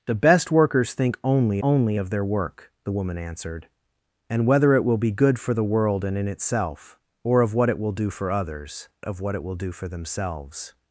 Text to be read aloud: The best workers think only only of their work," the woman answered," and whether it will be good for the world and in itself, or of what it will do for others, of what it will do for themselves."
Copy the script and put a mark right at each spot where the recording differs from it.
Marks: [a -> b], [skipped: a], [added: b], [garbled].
The best workers think only only of their work," the woman answered," and whether it will be good for the world and in itself, or of what it will do for others, of what it will do for themselves."